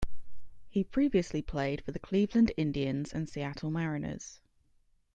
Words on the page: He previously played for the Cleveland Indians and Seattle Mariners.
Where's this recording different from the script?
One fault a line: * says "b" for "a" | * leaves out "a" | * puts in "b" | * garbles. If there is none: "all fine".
all fine